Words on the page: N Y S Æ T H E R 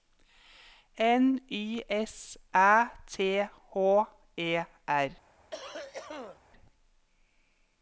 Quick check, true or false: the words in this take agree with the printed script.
true